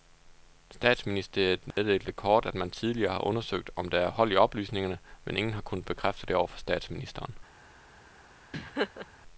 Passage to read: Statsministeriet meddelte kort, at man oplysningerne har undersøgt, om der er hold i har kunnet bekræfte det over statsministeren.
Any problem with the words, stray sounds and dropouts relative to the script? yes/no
yes